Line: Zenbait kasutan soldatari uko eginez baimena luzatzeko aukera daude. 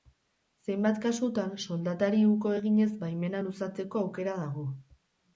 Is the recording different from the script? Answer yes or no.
yes